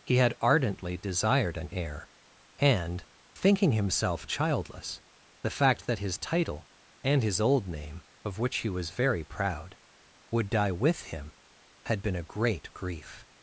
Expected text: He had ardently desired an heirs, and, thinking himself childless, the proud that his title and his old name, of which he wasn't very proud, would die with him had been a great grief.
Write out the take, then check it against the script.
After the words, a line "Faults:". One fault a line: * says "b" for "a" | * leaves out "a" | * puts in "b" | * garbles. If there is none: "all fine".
He had ardently desired an heir, and, thinking himself childless, the fact that his title and his old name, of which he was very proud, would die with him had been a great grief.
Faults:
* says "heir" for "heirs"
* says "fact" for "proud"
* says "was" for "wasn't"